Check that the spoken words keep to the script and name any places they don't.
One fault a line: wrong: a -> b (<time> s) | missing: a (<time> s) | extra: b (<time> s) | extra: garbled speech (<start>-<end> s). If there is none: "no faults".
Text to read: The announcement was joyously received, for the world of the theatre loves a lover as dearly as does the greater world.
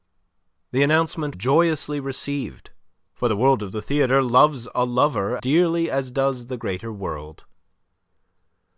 missing: was (1.4 s)
missing: as (5.4 s)